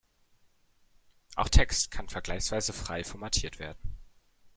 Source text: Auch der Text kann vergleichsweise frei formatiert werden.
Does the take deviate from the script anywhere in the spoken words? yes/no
yes